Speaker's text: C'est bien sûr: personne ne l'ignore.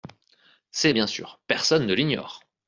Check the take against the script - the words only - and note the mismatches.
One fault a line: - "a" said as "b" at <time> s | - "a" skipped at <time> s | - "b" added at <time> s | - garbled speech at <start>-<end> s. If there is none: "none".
none